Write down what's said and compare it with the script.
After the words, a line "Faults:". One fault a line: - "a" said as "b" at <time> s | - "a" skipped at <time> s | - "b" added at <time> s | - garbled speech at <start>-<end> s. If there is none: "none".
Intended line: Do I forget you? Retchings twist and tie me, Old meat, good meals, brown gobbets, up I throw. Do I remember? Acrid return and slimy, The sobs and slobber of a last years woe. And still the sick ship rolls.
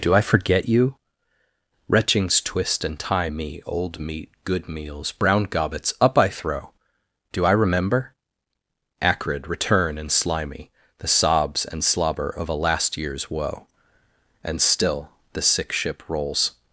Do I forget you? Retchings twist and tie me, Old meat, good meals, brown gobbets, up I throw. Do I remember? Acrid return and slimy, The sobs and slobber of a last years woe. And still the sick ship rolls.
Faults:
none